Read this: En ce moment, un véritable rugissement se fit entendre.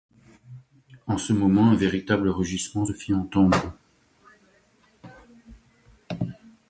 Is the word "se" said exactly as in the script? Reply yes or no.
no